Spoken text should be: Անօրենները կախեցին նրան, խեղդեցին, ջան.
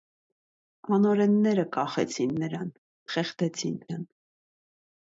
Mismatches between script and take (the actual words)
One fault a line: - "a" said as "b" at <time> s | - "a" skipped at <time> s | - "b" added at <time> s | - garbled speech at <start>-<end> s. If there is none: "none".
none